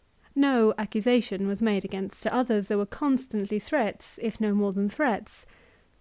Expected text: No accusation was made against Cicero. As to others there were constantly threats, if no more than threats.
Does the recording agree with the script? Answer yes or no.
no